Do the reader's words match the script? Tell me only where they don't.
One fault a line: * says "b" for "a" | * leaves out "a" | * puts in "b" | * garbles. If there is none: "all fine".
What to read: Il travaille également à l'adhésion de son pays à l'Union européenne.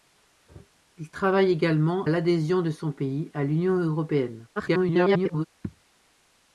* leaves out "à"
* garbles